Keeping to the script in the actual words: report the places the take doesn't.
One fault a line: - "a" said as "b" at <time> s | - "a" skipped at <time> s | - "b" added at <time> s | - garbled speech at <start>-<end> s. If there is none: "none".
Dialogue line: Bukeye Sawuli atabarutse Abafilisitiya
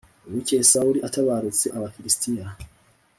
none